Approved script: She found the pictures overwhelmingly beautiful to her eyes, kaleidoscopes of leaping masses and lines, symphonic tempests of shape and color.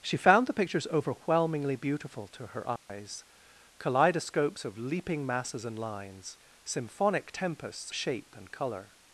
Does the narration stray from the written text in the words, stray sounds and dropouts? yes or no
yes